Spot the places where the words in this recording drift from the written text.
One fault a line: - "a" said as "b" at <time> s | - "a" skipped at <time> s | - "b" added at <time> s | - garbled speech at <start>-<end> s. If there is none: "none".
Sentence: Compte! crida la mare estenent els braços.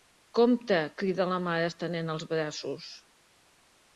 none